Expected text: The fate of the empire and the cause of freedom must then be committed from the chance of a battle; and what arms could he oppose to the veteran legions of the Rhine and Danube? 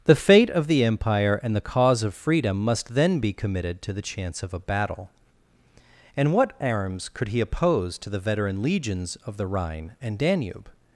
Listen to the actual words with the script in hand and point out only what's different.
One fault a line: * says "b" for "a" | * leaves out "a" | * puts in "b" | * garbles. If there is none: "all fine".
* says "to" for "from"